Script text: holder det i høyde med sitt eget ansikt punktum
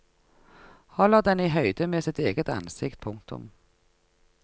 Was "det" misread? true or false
true